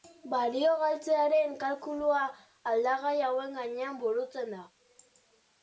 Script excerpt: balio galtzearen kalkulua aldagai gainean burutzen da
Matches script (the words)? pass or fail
fail